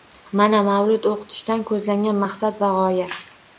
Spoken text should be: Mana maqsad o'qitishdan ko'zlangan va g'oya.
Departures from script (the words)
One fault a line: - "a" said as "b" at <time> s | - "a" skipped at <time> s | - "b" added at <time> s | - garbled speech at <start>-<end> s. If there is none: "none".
- "maqsad" said as "mavlud" at 0.7 s
- "maqsad" added at 2.2 s